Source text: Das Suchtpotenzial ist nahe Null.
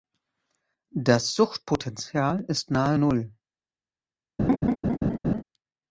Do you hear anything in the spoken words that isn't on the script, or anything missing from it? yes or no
no